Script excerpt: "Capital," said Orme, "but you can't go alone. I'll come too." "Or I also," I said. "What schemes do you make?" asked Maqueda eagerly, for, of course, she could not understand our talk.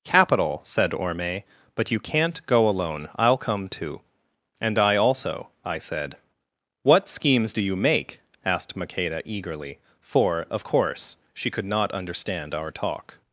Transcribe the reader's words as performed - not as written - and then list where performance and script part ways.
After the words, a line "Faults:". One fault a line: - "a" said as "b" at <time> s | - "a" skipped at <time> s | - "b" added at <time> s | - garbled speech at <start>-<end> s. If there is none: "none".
"Capital," said Orme, "but you can't go alone. I'll come too." "And I also," I said. "What schemes do you make?" asked Maqueda eagerly, for, of course, she could not understand our talk.
Faults:
- "Or" said as "And" at 4.6 s